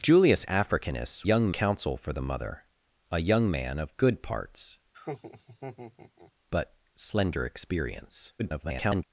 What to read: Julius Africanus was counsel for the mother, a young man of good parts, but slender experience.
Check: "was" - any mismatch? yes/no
yes